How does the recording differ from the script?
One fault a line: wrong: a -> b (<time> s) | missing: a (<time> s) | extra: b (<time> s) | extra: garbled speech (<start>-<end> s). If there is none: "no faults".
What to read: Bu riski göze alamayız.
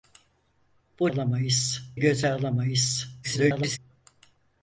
wrong: riski -> alamayız (1.1 s)
extra: garbled speech (3.2-3.8 s)